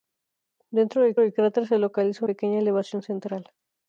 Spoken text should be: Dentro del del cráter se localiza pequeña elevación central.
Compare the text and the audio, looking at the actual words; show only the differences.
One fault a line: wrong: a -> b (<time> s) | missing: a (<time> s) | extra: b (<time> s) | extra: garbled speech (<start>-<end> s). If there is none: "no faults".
no faults